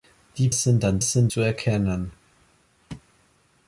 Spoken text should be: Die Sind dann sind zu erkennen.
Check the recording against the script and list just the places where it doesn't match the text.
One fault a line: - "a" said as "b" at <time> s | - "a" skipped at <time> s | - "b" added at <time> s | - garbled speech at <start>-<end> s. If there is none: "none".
none